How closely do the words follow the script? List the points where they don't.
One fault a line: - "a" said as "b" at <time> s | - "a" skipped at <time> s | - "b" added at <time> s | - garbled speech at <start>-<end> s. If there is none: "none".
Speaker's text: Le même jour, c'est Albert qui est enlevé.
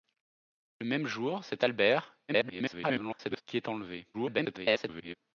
- garbled speech at 2.3-3.4 s
- garbled speech at 4.1-5.2 s